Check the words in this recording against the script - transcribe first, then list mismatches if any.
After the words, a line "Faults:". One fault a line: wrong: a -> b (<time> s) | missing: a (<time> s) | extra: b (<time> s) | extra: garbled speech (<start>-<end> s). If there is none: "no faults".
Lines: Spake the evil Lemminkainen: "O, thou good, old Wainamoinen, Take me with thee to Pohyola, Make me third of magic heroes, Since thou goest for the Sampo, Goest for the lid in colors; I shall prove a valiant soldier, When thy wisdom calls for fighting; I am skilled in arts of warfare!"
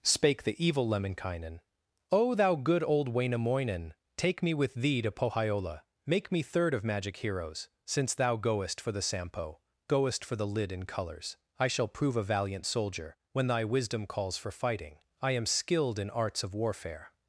Spake the evil Lemminkainen: "O, thou good, old Wainamoinen, Take me with thee to Pohyola, Make me third of magic heroes, Since thou goest for the Sampo, Goest for the lid in colors; I shall prove a valiant soldier, When thy wisdom calls for fighting; I am skilled in arts of warfare!"
Faults:
no faults